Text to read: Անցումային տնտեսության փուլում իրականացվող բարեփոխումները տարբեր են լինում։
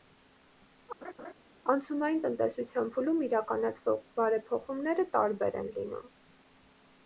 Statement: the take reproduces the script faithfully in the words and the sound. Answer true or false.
false